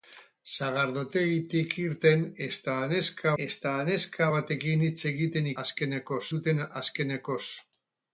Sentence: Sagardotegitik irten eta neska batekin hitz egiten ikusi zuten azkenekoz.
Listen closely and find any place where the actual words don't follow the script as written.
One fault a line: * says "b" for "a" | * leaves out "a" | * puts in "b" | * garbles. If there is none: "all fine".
* puts in "eta neska"
* says "azkenekoz" for "ikusi"